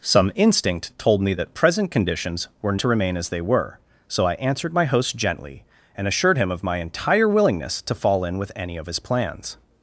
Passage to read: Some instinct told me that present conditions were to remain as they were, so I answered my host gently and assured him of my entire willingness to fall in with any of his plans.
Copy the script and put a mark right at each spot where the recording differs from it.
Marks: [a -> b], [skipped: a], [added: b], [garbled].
Some instinct told me that present conditions were to remain as they were, so I answered my host gently and assured him of my entire willingness to fall in with any of his plans.